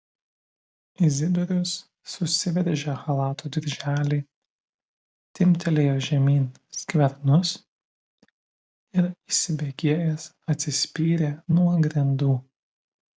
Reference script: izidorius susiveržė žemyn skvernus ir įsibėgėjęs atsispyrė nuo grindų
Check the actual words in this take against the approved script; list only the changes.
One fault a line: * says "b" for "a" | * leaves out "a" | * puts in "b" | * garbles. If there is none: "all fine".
* puts in "chalato dirželį timptelėjo"